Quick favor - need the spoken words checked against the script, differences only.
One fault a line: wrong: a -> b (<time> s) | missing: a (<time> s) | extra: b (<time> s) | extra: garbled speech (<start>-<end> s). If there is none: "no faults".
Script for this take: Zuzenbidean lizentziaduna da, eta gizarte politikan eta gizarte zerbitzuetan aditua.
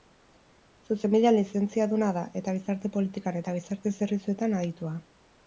no faults